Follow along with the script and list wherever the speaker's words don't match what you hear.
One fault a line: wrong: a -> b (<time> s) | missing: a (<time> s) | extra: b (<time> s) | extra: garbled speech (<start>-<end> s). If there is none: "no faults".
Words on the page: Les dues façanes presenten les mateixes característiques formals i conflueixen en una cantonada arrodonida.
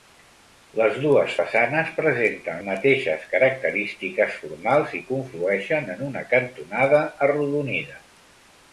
missing: les (2.6 s)